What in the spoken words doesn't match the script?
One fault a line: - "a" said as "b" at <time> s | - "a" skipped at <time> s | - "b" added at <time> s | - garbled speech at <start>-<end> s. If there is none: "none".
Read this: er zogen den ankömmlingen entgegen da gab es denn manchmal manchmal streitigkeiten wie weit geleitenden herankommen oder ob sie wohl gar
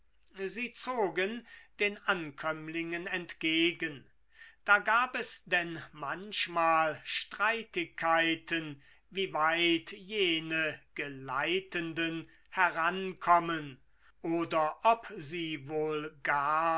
- "er" said as "sie" at 0.5 s
- "manchmal" skipped at 7.0 s
- "jene" added at 9.9 s